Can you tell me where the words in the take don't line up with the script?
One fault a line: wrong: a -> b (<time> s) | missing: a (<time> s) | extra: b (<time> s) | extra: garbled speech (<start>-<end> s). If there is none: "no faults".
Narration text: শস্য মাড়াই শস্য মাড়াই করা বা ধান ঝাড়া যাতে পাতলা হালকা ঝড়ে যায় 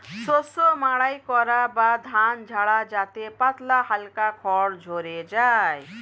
missing: শস্য মাড়াই (1.2 s)
extra: খড় (4.4 s)